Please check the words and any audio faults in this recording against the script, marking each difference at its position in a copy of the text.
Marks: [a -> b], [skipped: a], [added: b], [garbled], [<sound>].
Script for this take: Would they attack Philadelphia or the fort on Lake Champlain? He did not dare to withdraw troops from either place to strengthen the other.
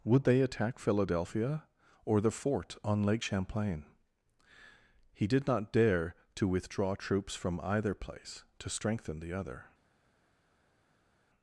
Would they attack Philadelphia or the fort on Lake Champlain? He did not dare to withdraw troops from either place to strengthen the other.